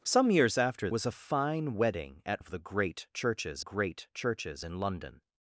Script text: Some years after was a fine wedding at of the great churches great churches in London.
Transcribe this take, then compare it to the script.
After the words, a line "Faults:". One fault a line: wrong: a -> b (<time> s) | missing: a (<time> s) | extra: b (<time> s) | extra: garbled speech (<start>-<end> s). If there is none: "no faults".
Some years after was a fine wedding at of the great churches great churches in London.
Faults:
no faults